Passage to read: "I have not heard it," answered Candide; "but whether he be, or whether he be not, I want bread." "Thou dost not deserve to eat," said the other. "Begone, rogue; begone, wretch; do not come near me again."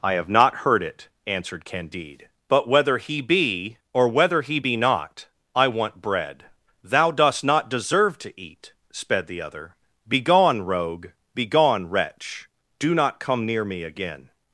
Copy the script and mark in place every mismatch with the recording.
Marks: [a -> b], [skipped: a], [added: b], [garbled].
"I have not heard it," answered Candide; "but whether he be, or whether he be not, I want bread." "Thou dost not deserve to eat," [said -> sped] the other. "Begone, rogue; begone, wretch; do not come near me again."